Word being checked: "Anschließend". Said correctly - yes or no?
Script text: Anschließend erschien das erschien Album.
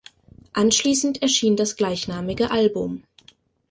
yes